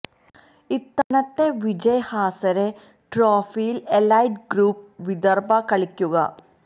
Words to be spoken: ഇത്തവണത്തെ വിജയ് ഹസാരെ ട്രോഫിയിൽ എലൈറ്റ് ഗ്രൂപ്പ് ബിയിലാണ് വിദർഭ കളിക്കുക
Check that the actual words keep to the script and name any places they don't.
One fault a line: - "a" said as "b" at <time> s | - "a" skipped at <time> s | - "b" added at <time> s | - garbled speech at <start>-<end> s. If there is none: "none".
- "ബിയിലാണ്" skipped at 4.8 s